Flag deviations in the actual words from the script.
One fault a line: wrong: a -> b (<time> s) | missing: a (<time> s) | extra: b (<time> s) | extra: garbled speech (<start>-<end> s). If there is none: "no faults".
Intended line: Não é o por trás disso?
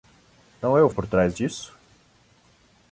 no faults